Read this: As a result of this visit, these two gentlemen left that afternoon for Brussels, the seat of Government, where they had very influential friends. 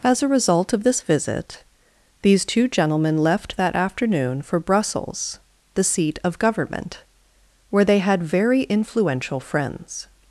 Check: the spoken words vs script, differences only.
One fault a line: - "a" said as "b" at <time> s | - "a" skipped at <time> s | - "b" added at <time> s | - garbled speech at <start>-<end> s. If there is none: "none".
none